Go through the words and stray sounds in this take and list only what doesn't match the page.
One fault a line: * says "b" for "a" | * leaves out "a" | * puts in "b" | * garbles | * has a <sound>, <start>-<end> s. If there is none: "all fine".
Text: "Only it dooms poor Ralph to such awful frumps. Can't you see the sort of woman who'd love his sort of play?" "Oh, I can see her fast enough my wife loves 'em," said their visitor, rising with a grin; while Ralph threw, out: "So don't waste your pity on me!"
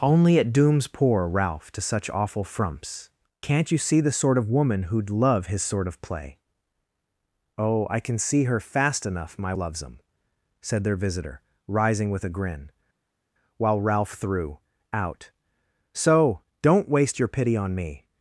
* leaves out "wife"